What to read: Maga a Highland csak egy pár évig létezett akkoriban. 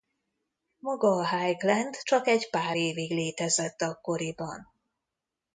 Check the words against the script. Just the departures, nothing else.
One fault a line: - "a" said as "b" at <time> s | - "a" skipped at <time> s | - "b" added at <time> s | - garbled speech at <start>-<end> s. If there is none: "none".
none